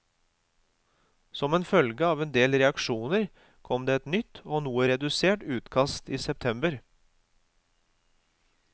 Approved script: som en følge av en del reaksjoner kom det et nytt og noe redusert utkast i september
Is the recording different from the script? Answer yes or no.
no